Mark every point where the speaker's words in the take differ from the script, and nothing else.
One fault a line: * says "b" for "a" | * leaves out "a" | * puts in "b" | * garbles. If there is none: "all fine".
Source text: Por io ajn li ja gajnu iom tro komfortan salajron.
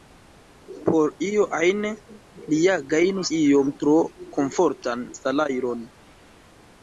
all fine